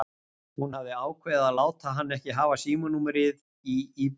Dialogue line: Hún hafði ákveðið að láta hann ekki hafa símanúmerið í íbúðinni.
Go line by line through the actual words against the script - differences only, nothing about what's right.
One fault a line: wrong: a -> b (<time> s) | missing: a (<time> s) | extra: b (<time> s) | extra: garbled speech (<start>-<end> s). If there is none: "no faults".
no faults